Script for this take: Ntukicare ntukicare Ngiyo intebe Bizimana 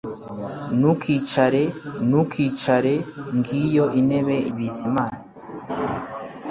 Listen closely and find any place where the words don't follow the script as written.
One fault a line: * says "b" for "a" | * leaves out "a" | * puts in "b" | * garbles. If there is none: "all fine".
all fine